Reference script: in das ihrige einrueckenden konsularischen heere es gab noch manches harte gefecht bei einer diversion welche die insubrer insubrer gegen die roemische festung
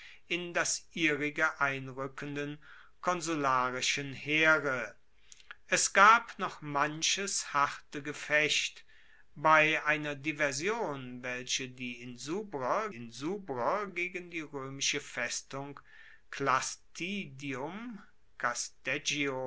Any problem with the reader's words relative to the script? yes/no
no